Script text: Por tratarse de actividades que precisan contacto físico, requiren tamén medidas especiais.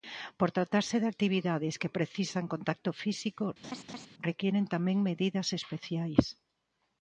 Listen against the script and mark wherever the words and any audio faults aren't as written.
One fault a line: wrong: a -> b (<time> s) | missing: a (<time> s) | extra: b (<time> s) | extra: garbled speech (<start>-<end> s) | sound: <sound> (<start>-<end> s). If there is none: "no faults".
sound: laugh (3.6-4.1 s)